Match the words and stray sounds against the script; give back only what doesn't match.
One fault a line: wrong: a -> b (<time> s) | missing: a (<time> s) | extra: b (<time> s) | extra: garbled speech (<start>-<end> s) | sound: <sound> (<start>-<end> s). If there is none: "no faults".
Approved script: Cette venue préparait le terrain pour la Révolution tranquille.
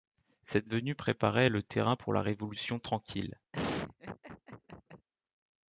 sound: laugh (3.5-5.1 s)